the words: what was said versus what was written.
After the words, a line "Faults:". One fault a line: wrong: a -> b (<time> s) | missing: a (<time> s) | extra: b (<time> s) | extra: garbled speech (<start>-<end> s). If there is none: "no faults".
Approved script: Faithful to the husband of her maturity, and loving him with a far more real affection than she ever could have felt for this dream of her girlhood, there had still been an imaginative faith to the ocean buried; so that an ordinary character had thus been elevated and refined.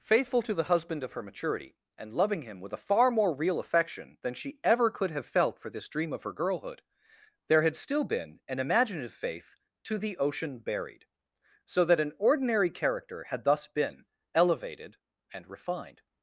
Faithful to the husband of her maturity, and loving him with a far more real affection than she ever could have felt for this dream of her girlhood, there had still been an imaginative faith to the ocean buried; so that an ordinary character had thus been elevated and refined.
Faults:
no faults